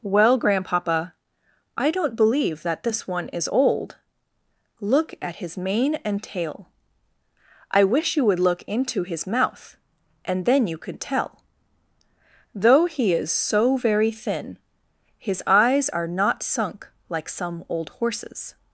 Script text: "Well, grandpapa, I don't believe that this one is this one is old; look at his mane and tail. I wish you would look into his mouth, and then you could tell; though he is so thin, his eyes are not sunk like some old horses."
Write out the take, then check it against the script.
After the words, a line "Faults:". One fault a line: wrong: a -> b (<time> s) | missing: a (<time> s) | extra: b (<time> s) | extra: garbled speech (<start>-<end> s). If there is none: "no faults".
"Well, grandpapa, I don't believe that this one is old; look at his mane and tail. I wish you would look into his mouth, and then you could tell; though he is so very thin, his eyes are not sunk like some old horses."
Faults:
missing: this one is (3.5 s)
extra: very (13.8 s)